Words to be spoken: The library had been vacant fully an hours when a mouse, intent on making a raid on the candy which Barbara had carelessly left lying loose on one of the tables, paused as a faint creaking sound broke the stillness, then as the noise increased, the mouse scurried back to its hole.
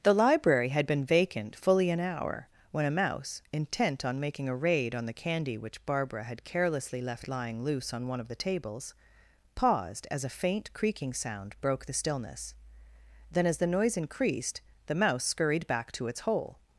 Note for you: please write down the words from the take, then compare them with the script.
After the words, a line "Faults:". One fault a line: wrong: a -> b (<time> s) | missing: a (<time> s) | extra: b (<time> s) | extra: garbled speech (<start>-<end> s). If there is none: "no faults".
The library had been vacant fully an hour when a mouse, intent on making a raid on the candy which Barbara had carelessly left lying loose on one of the tables, paused as a faint creaking sound broke the stillness, then as the noise increased, the mouse scurried back to its hole.
Faults:
wrong: hours -> hour (2.0 s)